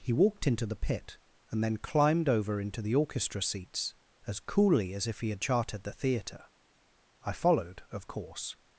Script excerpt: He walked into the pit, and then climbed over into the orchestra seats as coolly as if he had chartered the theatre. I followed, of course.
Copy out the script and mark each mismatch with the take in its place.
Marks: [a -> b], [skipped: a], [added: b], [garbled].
He walked into the pit, and then climbed over into the orchestra seats as coolly as if he had chartered the theatre. I followed, of course.